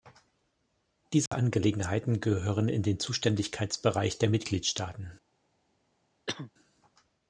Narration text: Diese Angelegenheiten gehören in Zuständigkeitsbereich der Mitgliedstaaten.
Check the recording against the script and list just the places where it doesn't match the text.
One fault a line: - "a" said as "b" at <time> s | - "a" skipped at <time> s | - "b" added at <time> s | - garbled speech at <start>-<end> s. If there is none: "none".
- "den" added at 2.8 s